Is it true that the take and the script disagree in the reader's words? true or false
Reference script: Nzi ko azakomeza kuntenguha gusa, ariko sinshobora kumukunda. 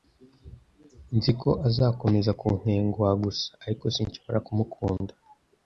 false